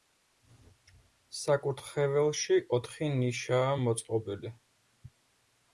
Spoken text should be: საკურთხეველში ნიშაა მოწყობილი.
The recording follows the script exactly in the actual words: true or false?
false